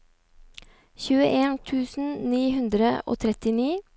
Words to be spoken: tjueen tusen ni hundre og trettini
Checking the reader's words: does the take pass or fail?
pass